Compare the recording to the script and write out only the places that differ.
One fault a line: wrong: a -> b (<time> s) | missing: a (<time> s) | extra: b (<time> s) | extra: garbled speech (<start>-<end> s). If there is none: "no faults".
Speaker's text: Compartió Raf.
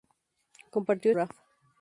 no faults